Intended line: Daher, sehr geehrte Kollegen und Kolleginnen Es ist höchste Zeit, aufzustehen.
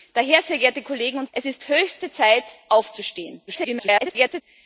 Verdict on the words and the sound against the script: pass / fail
fail